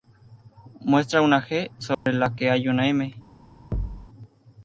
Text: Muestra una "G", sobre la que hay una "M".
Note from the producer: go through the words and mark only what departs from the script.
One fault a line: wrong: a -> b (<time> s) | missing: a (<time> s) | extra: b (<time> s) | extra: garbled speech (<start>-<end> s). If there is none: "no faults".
no faults